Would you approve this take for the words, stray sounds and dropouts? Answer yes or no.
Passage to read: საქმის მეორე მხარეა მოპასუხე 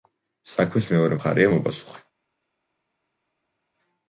yes